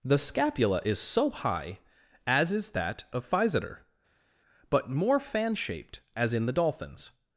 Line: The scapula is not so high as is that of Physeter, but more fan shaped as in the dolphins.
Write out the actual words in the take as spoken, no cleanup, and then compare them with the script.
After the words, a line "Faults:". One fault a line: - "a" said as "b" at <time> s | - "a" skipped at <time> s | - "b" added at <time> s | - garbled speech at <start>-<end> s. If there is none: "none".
The scapula is so high as is that of Physeter, but more fan shaped as in the dolphins.
Faults:
- "not" skipped at 1.0 s